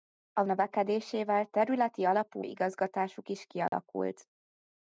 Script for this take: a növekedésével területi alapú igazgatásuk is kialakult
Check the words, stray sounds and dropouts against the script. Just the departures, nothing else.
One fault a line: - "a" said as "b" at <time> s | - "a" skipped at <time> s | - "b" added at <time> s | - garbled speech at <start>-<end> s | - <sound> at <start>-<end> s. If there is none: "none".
- dropout at 3.7-3.7 s